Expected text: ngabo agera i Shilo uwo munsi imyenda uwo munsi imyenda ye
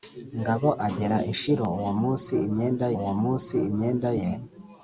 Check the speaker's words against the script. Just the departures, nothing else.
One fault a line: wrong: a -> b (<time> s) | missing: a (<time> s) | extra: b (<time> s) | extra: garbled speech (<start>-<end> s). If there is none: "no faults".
no faults